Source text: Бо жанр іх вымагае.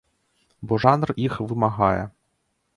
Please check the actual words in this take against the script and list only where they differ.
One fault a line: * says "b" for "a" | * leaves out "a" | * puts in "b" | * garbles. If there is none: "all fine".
all fine